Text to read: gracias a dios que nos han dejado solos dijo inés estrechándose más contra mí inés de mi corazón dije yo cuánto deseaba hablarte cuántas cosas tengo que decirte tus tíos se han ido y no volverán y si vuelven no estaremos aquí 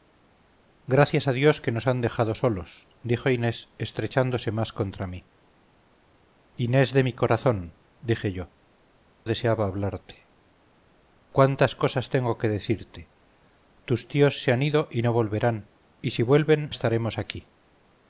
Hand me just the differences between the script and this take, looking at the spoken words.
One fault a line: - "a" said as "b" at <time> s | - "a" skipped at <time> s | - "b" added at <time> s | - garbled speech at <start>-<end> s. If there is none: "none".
- "cuánto" skipped at 8.5 s
- "no" skipped at 16.7 s